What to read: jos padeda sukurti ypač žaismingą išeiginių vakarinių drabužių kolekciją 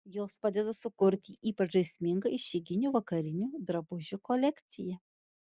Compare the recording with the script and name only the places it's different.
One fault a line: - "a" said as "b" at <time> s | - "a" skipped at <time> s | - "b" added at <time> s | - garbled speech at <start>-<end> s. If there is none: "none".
none